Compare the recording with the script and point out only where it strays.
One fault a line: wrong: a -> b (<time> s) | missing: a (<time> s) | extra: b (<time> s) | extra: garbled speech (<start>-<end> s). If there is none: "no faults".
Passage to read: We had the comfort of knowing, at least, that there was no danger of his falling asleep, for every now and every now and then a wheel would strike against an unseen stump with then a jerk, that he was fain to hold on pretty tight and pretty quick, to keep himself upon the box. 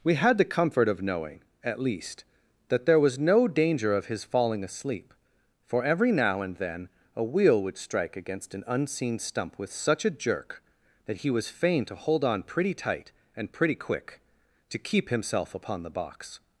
missing: every now and (6.6 s)
wrong: then -> such (9.7 s)